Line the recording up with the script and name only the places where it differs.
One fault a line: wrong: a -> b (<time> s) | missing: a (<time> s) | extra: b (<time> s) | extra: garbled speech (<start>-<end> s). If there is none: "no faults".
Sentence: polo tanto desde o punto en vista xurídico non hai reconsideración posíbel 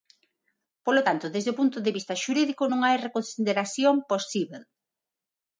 wrong: en -> de (1.8 s)